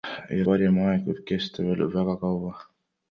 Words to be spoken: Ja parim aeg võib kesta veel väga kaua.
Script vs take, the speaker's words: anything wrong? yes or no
no